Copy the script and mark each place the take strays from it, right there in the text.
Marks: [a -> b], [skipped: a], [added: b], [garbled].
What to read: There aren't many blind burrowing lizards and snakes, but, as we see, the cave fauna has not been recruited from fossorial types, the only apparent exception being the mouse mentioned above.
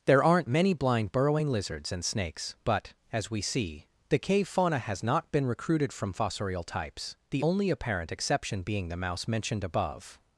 There aren't many blind burrowing lizards and snakes, but, as we see, the cave fauna has not been recruited from fossorial types, the only apparent exception being the mouse mentioned above.